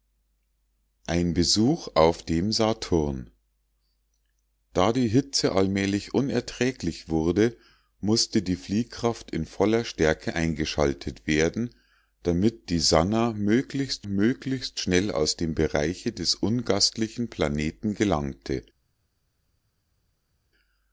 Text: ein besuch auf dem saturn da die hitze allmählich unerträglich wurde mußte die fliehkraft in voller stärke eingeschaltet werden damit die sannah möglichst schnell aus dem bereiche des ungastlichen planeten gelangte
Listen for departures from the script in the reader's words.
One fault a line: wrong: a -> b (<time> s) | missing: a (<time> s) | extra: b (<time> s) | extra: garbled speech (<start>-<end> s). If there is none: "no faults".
extra: möglichst (14.0 s)